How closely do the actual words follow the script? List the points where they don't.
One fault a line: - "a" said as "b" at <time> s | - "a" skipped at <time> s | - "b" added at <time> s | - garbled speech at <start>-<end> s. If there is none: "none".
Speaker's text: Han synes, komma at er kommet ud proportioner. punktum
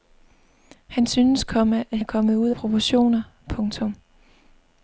none